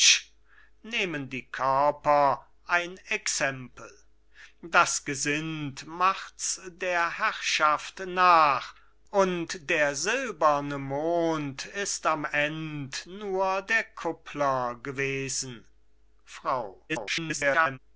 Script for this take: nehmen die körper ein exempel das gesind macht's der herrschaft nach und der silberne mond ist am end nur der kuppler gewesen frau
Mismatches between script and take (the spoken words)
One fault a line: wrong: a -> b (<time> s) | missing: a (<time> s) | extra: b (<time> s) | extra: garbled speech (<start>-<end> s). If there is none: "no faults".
extra: garbled speech (16.9-17.8 s)